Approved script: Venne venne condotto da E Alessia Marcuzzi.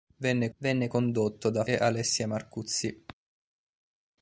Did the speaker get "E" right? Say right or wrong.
right